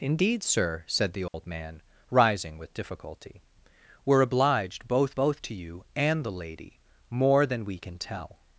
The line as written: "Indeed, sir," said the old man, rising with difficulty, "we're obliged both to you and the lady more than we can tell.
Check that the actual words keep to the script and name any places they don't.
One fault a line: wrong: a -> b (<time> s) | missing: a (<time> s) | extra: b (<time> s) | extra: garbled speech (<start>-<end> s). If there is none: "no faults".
extra: both (5.1 s)